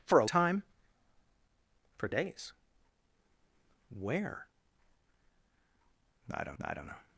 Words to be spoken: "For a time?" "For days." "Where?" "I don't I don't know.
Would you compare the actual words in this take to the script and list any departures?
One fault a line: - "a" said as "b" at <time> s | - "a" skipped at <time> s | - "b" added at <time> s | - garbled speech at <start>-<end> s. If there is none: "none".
none